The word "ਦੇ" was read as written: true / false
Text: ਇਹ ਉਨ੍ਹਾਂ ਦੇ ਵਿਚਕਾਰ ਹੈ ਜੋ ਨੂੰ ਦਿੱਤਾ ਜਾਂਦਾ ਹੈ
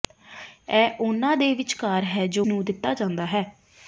true